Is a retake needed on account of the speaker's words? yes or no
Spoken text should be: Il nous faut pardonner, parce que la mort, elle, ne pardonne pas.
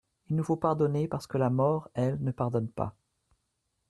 no